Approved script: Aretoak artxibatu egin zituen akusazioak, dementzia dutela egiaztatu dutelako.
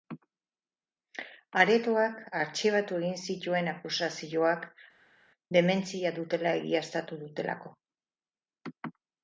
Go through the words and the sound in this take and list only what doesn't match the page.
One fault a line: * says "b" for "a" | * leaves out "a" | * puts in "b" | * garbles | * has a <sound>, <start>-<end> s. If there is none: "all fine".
all fine